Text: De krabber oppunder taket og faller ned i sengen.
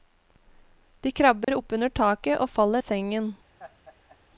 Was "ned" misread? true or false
true